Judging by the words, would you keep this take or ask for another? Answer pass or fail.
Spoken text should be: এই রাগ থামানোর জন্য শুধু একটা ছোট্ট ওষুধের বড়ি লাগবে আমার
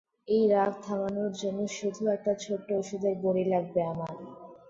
pass